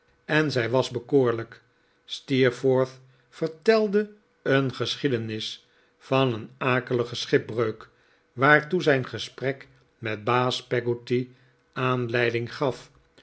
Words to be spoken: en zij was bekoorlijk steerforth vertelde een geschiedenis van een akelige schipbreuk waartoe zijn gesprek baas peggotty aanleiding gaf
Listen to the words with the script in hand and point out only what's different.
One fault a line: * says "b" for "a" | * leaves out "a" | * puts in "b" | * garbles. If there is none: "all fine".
* puts in "met"